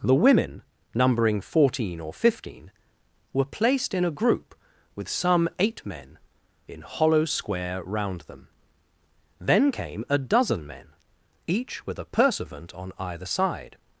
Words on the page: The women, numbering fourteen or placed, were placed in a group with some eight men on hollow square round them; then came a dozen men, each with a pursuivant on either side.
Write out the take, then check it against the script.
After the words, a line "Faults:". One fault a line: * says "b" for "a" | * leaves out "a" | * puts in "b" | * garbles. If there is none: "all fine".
The women, numbering fourteen or fifteen, were placed in a group with some eight men in hollow square round them; then came a dozen men, each with a pursuivant on either side.
Faults:
* says "fifteen" for "placed"
* says "in" for "on"